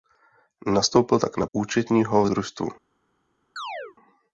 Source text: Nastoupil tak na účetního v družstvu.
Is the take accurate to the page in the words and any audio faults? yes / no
no